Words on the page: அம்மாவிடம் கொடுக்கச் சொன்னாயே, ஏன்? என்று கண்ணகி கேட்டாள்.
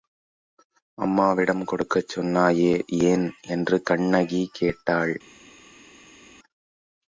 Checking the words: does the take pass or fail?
pass